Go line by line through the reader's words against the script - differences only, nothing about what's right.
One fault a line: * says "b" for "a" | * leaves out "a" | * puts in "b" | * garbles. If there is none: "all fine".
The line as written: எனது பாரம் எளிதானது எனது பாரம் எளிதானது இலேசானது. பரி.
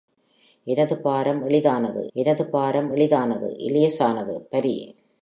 all fine